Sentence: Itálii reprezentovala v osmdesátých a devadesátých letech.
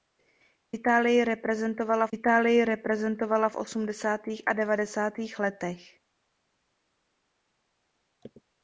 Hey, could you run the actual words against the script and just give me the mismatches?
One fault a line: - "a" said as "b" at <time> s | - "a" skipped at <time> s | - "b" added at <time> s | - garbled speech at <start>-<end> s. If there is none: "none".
- "itálii reprezentovala" added at 2.1 s